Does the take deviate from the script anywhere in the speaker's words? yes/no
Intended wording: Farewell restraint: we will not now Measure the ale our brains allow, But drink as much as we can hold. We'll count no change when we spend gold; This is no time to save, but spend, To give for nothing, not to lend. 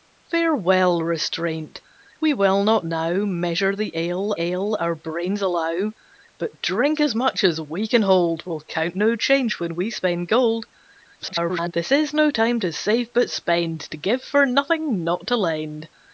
yes